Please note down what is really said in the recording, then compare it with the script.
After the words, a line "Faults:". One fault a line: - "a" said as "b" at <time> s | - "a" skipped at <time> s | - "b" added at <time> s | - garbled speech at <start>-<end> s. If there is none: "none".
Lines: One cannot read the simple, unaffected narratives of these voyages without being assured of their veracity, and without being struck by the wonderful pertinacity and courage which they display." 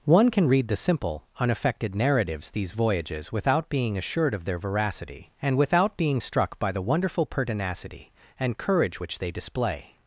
One can read the simple, unaffected narratives these voyages without being assured of their veracity, and without being struck by the wonderful pertinacity and courage which they display."
Faults:
- "cannot" said as "can" at 0.3 s
- "of" skipped at 2.5 s